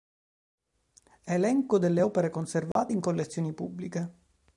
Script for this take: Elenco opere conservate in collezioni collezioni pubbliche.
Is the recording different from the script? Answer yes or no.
yes